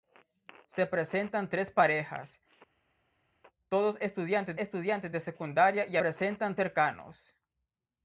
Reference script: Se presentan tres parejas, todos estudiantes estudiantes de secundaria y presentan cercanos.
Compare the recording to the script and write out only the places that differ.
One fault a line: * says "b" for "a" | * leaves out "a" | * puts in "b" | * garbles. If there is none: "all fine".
all fine